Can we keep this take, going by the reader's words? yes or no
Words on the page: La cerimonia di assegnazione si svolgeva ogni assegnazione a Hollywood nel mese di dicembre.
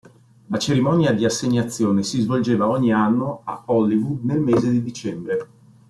no